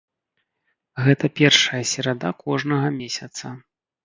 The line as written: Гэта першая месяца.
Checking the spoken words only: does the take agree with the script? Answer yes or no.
no